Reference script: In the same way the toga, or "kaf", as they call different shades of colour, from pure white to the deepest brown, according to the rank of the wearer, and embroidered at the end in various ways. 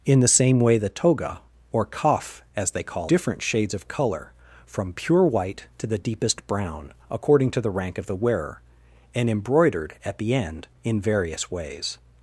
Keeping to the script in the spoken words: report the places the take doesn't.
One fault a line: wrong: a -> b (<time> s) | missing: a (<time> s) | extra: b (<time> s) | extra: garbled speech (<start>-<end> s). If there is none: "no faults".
no faults